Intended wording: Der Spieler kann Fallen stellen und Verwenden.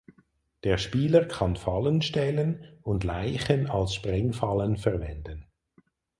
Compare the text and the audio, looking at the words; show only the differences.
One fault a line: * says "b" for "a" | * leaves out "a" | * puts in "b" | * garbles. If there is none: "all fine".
* puts in "Leichen als Sprengfallen"